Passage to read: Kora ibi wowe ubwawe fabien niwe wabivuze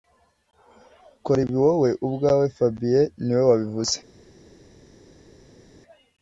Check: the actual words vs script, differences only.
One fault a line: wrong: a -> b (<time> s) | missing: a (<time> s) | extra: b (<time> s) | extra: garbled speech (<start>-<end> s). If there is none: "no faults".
no faults